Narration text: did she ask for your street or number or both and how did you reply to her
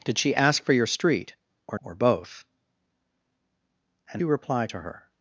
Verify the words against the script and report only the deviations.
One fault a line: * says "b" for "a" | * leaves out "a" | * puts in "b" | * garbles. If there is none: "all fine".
* leaves out "number"
* leaves out "how did"